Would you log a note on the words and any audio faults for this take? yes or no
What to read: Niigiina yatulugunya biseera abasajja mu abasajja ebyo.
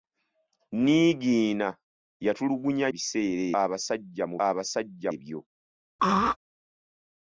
yes